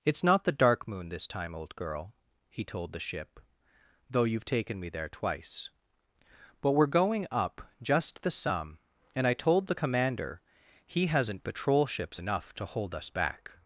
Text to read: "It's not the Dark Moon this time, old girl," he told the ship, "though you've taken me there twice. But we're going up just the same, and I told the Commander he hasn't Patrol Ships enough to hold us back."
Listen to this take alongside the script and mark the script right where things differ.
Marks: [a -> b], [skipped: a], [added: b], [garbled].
"It's not the Dark Moon this time, old girl," he told the ship, "though you've taken me there twice. But we're going up just the [same, -> some] and I told the Commander he hasn't Patrol Ships enough to hold us back."